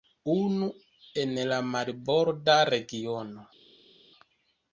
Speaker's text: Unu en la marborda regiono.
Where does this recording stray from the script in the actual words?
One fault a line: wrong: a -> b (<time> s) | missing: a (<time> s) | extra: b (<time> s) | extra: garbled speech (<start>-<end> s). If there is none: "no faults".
no faults